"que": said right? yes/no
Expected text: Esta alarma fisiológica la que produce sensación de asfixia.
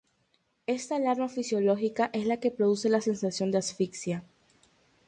yes